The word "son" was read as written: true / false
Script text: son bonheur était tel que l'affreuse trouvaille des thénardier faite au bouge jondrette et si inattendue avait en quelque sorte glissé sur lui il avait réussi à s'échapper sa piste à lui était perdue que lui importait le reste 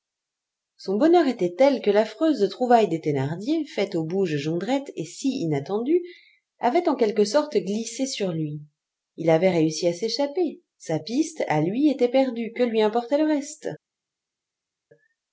true